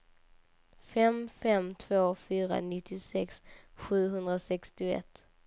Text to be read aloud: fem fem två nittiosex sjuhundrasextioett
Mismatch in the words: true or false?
true